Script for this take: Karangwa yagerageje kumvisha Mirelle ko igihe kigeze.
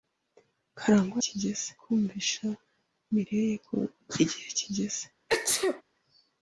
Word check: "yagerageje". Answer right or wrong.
wrong